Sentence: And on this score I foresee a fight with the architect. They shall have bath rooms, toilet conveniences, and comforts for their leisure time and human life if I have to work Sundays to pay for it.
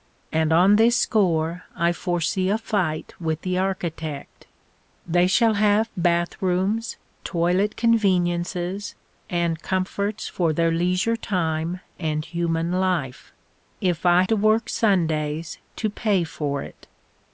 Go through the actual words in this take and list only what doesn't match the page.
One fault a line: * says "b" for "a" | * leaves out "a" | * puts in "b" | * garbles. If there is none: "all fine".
* leaves out "have"